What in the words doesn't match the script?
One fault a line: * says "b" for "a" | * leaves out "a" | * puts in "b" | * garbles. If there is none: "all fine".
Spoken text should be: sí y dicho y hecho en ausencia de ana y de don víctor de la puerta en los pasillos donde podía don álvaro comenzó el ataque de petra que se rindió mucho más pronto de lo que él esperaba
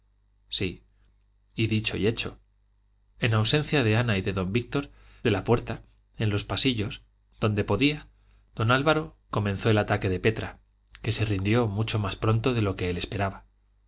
all fine